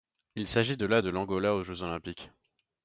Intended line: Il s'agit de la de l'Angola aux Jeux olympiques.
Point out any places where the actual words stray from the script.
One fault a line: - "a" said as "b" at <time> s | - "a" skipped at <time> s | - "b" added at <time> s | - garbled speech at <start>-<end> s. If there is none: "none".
none